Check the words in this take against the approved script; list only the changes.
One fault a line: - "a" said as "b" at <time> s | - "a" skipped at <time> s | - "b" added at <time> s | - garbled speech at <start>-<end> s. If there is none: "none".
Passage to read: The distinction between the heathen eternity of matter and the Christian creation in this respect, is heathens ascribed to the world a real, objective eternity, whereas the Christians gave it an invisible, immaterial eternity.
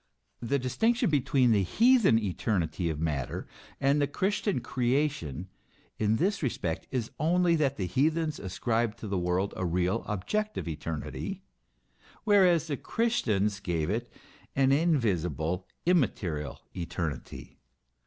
- "only that the" added at 7.2 s